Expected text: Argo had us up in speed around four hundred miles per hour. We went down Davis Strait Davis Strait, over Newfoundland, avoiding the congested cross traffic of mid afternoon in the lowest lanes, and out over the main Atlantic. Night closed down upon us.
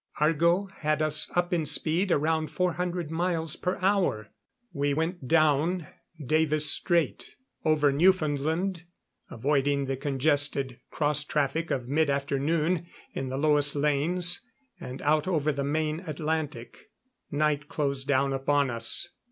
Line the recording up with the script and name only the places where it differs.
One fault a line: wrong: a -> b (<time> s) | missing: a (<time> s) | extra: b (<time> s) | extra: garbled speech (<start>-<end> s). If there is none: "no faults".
missing: Davis Strait (7.3 s)